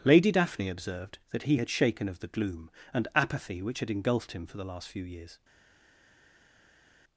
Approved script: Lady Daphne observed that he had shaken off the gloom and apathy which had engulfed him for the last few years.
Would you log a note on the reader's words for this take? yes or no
yes